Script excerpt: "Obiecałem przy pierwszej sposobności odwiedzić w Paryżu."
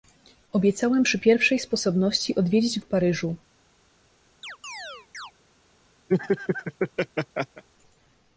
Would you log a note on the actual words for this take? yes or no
no